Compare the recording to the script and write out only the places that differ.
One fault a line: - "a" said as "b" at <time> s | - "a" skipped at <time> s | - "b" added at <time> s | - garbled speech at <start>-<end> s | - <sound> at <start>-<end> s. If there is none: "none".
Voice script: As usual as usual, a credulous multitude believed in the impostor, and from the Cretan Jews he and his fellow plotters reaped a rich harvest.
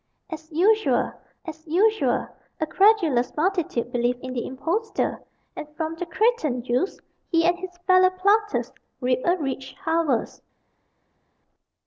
none